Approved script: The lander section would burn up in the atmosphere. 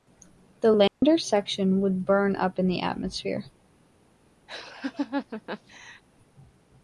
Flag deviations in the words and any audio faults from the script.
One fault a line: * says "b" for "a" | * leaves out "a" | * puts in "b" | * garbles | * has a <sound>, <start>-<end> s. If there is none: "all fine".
* has a dropout, 0.9-1.0 s
* has a laugh, 4.5-6.0 s